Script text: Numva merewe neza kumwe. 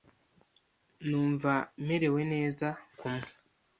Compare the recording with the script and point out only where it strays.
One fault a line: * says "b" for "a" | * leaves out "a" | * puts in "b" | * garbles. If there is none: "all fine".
all fine